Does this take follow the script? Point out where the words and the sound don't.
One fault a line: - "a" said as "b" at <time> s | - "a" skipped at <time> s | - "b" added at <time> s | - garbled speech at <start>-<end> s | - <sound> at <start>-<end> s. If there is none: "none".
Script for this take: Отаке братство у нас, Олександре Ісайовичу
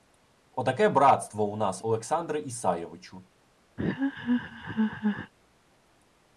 - laugh at 3.8-5.3 s